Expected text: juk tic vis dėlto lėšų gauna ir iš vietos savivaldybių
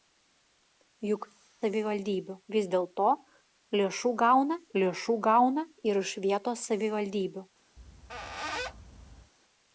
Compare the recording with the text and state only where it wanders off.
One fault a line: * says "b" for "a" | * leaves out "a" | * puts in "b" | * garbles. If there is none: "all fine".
* says "savivaldybių" for "tic"
* puts in "lėšų gauna"